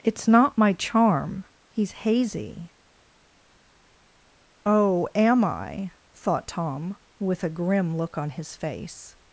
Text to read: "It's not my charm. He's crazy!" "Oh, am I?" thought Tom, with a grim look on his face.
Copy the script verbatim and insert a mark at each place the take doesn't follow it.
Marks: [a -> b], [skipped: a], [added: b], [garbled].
"It's not my charm. He's [crazy!" -> hazy] "Oh, am I?" thought Tom, with a grim look on his face.